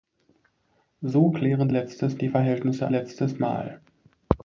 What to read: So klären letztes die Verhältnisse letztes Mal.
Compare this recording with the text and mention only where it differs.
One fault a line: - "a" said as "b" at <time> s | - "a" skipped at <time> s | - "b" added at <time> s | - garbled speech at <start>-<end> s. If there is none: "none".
none